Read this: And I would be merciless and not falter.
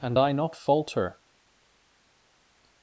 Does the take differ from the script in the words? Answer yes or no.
yes